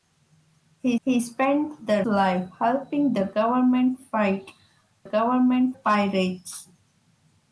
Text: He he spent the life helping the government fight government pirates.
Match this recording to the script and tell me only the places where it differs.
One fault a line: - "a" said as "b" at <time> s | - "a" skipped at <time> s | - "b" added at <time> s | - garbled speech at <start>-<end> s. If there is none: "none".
none